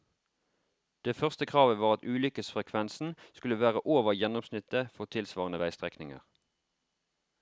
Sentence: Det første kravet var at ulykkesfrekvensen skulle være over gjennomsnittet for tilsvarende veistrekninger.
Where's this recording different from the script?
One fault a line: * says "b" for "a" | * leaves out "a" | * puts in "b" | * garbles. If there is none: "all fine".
all fine